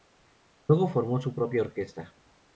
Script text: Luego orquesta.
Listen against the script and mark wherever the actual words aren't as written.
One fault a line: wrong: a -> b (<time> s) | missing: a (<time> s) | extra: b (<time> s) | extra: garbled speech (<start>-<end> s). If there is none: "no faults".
extra: formó su propia (0.9 s)